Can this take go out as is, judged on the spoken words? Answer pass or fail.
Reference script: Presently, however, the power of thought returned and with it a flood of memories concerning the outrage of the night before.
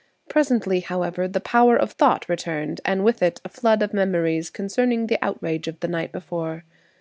pass